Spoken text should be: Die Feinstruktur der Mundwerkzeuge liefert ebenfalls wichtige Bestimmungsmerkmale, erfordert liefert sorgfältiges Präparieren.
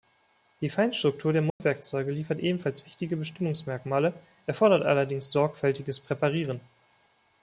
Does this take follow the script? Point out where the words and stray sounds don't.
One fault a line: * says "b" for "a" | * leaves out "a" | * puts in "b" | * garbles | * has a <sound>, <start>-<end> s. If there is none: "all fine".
* has a dropout, 1.5-1.6 s
* says "allerdings" for "liefert"